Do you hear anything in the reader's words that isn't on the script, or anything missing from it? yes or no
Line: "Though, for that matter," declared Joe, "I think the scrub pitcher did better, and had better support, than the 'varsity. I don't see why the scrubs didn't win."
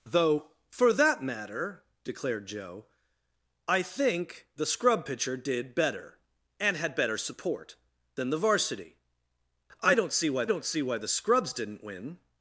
yes